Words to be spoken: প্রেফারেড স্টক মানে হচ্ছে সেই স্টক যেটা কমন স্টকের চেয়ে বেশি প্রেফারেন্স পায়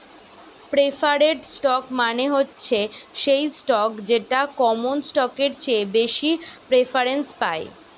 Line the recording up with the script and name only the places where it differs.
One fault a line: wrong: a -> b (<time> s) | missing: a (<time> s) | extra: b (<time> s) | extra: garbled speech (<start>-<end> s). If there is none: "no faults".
no faults